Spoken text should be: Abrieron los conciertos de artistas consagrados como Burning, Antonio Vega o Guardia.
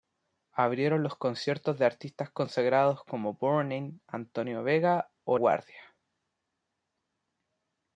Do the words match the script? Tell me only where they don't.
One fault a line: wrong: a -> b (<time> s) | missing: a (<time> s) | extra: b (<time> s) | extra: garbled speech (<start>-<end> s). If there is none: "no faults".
no faults